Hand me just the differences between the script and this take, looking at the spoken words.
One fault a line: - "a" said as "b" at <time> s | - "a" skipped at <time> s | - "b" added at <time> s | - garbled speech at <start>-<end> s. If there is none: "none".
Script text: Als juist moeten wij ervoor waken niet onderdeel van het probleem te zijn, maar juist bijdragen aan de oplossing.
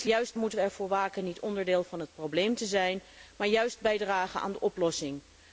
none